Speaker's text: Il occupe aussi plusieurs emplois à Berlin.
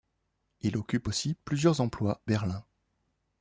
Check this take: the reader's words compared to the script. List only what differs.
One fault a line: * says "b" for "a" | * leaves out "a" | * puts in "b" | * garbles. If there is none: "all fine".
* leaves out "à"